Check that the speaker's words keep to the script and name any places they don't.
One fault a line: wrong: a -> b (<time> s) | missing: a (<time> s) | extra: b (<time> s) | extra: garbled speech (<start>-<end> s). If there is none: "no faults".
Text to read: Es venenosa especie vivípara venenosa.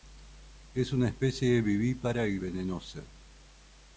wrong: venenosa -> una (0.9 s)
extra: y (2.3 s)